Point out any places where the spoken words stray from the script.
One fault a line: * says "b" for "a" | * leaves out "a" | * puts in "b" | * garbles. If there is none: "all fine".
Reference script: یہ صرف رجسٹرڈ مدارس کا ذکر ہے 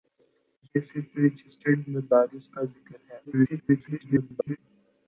* garbles